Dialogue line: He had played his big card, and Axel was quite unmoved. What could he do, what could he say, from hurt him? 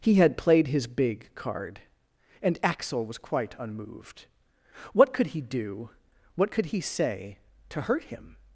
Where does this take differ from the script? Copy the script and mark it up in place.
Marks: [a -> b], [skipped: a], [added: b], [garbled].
He had played his big card, and Axel was quite unmoved. What could he do, what could he say, [from -> to] hurt him?